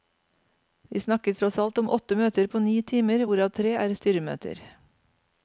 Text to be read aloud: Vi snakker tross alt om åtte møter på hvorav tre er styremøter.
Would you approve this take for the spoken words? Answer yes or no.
no